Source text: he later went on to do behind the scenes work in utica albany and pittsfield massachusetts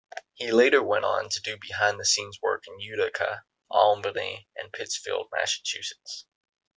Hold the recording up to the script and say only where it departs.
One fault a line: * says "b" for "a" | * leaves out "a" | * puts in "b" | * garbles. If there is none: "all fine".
all fine